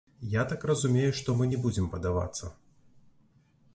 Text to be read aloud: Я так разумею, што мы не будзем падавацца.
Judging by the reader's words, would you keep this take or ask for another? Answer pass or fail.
pass